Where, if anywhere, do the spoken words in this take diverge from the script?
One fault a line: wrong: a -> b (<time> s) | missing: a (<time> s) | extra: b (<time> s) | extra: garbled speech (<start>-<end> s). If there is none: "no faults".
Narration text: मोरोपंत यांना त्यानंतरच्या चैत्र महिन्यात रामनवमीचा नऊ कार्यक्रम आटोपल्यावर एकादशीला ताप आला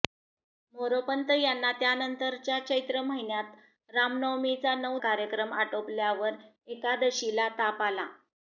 no faults